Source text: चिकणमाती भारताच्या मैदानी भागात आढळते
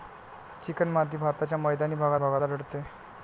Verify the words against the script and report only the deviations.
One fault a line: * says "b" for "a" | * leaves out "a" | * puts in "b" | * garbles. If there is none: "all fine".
* puts in "भागात"